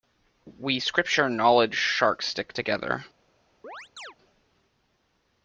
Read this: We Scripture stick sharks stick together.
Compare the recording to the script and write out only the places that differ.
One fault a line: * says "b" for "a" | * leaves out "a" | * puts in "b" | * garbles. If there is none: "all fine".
* says "knowledge" for "stick"